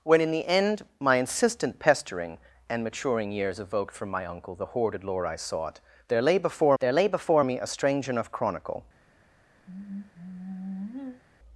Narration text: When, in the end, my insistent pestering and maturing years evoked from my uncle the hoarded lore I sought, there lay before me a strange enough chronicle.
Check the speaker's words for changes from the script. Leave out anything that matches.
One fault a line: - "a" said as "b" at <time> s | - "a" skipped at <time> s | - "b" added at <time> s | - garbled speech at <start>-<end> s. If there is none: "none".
- "there lay before" added at 6.8 s